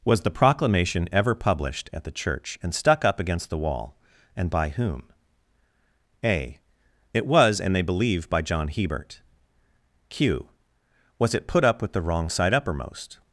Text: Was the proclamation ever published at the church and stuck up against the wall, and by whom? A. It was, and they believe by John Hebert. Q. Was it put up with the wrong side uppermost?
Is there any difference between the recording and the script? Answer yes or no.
no